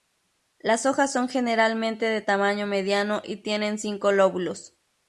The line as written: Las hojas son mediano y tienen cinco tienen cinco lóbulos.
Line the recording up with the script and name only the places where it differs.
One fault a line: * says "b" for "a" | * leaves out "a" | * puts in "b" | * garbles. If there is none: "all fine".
* puts in "generalmente de tamaño"
* leaves out "tienen cinco"